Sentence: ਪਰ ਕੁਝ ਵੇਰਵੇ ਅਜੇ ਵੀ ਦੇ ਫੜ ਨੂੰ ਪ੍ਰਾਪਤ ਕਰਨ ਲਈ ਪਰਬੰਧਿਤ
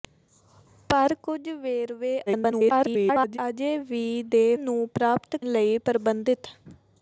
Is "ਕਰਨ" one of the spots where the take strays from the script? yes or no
yes